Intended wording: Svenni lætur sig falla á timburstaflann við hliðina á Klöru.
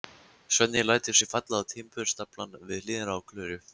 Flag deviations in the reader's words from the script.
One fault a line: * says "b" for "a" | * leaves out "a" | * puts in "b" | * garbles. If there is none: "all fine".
all fine